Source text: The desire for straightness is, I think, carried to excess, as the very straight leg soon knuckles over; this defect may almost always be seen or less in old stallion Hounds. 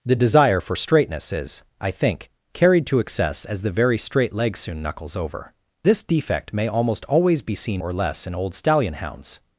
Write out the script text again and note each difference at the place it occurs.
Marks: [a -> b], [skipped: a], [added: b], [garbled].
The desire for straightness is, I think, carried to excess, as the very straight leg soon knuckles over; this defect may almost always be seen or less in old stallion Hounds.